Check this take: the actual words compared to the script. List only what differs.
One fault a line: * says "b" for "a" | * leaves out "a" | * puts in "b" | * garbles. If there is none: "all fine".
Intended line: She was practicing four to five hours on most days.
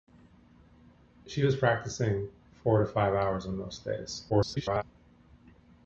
* garbles